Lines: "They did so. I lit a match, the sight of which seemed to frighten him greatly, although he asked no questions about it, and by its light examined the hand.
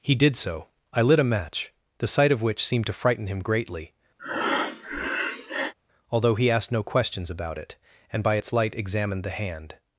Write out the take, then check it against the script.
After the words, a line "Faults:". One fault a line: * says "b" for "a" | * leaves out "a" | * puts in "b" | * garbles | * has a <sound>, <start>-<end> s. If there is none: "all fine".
"He did so. I lit a match, the sight of which seemed to frighten him greatly, although he asked no questions about it, and by its light examined the hand.
Faults:
* says "He" for "They"
* has a breath, 4.2-5.7 s